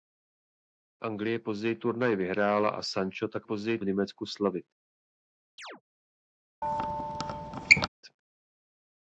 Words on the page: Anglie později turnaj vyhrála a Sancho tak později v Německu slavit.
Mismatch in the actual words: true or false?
false